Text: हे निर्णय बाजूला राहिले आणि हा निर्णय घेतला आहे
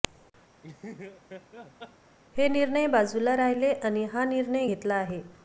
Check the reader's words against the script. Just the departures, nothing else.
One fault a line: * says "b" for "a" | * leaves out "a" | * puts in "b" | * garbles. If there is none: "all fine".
all fine